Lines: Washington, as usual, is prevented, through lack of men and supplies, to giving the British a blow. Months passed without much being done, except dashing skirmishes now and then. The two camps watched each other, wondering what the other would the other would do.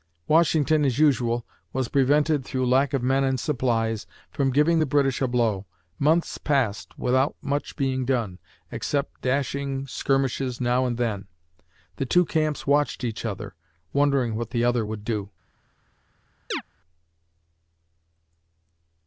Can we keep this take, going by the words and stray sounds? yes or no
no